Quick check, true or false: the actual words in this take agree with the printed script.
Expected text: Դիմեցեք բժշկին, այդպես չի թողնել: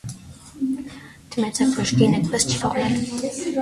true